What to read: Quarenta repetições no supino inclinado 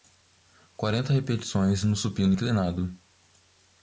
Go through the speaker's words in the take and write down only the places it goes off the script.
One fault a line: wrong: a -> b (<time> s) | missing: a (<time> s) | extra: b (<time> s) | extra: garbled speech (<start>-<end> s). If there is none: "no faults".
no faults